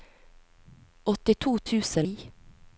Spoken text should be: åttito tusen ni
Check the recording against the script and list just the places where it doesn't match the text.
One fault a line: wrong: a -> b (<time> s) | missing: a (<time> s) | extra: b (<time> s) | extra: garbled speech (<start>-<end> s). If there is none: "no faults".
no faults